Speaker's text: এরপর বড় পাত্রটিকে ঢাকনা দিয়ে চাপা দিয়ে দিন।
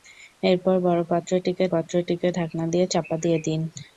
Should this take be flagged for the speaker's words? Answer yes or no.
yes